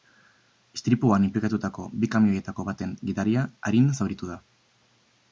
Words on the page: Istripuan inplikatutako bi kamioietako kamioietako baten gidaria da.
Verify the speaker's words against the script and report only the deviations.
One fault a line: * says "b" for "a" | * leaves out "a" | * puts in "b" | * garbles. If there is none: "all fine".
* leaves out "kamioietako"
* puts in "arin zauritu"